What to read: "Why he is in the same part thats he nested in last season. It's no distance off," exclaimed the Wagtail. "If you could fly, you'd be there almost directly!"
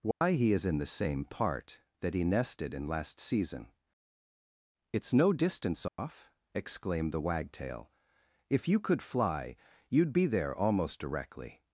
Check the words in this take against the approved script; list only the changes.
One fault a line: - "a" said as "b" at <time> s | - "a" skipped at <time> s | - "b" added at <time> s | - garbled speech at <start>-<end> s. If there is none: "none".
- "thats" said as "that" at 2.0 s